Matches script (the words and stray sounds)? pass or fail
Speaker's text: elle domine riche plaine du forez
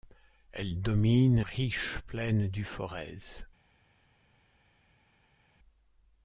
pass